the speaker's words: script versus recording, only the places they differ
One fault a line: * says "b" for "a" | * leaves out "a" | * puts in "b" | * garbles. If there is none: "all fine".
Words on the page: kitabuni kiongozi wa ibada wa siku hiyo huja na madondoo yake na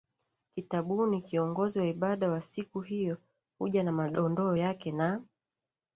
all fine